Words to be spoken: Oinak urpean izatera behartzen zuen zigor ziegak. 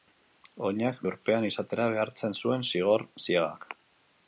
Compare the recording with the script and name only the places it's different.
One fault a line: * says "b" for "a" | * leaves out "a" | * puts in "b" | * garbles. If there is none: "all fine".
all fine